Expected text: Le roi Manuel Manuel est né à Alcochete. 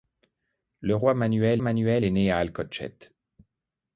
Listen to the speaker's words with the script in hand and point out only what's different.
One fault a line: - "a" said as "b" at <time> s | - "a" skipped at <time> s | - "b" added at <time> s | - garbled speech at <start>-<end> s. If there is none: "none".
none